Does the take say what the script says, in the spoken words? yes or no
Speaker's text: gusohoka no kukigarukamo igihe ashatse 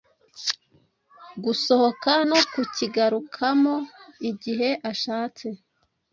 yes